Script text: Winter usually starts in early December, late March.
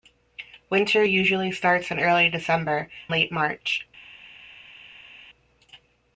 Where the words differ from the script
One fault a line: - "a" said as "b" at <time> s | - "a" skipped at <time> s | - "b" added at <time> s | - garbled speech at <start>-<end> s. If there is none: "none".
none